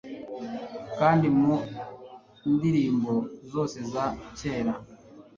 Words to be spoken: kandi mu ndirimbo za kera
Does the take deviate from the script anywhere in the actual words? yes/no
yes